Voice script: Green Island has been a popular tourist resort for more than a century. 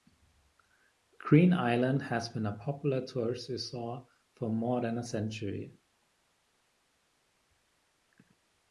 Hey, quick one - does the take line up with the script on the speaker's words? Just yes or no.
yes